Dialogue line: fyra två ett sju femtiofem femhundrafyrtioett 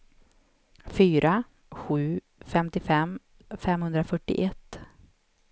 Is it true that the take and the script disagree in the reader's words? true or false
true